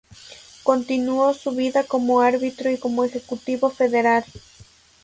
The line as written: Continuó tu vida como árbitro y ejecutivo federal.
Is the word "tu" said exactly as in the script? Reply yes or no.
no